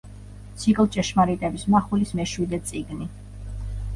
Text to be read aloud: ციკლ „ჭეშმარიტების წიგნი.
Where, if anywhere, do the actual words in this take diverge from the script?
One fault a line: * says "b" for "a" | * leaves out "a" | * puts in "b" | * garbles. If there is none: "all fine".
* puts in "მახვილის მეშვიდე"